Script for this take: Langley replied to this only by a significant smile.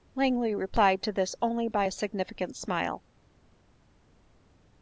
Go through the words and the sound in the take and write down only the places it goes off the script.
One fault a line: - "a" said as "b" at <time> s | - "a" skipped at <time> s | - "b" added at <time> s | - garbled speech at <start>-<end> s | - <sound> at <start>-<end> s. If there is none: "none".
none